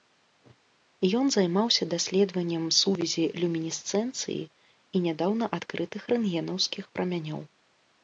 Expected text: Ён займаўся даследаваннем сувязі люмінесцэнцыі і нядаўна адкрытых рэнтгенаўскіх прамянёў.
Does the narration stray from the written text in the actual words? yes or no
no